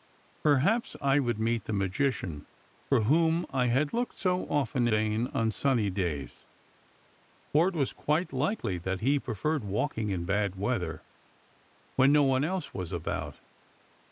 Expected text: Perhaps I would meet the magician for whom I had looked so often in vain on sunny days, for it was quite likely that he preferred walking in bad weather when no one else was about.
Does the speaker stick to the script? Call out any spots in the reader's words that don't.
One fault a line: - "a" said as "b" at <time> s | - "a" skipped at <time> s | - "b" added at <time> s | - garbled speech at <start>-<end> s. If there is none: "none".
- "in" skipped at 4.9 s